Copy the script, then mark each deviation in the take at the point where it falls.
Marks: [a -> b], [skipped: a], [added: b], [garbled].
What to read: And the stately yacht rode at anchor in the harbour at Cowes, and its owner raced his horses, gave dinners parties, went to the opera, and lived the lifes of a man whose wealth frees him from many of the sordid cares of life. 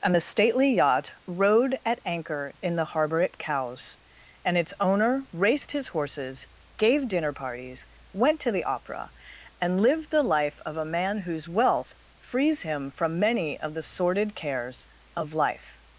And the stately yacht rode at anchor in the harbour at Cowes, and its owner raced his horses, gave [dinners -> dinner] parties, went to the opera, and lived the [lifes -> life] of a man whose wealth frees him from many of the sordid cares of life.